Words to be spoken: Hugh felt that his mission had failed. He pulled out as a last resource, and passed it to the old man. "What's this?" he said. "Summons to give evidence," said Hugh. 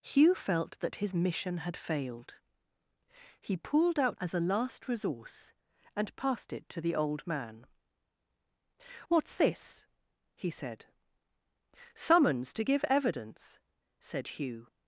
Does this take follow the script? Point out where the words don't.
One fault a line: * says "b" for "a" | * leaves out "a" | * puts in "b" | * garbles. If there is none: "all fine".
all fine